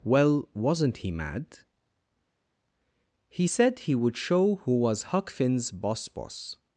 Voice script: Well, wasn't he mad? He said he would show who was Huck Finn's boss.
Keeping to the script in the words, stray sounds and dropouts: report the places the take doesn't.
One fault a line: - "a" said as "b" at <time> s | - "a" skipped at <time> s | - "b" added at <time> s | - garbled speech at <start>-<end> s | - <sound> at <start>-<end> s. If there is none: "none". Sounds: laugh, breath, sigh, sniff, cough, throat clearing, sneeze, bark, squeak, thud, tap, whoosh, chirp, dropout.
- "boss" added at 6.1 s